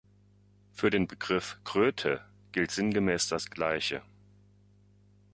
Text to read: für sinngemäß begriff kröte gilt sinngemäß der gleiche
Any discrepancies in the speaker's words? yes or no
yes